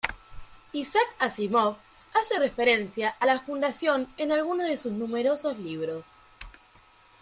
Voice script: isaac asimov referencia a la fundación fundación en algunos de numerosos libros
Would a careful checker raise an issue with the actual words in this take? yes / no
yes